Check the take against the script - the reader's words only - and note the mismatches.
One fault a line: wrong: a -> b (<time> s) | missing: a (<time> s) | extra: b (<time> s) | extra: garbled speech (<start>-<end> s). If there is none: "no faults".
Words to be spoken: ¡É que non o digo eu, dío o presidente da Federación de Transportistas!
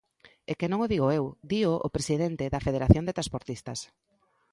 no faults